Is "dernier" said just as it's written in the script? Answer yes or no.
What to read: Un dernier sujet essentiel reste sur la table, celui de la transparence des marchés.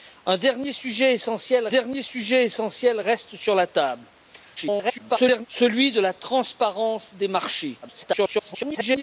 yes